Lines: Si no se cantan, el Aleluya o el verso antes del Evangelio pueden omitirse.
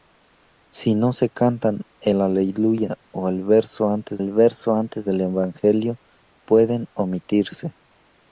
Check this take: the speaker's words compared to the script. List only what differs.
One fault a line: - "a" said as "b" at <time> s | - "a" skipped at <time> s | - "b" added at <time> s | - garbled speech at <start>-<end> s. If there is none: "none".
- "el verso antes" added at 4.2 s